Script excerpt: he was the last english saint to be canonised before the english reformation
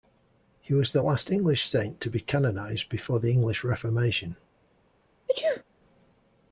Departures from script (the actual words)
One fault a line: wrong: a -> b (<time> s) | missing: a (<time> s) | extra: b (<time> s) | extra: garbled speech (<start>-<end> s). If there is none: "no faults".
no faults